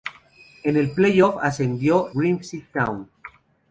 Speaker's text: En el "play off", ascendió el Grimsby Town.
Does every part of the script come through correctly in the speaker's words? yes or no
no